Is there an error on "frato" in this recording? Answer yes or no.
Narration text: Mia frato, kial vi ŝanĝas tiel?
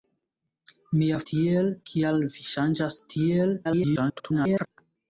yes